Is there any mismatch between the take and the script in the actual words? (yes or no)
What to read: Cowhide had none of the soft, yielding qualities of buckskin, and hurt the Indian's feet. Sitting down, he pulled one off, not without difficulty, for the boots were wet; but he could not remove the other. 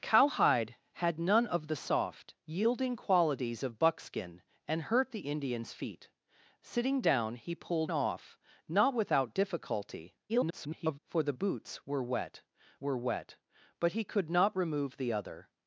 yes